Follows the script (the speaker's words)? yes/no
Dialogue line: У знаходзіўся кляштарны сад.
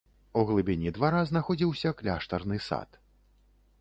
no